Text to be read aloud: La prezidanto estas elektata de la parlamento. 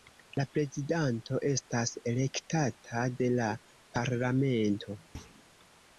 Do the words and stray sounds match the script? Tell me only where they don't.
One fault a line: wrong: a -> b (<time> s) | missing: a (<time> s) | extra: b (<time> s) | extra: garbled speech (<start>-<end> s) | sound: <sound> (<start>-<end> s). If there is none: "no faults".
sound: thud (5.1-5.4 s)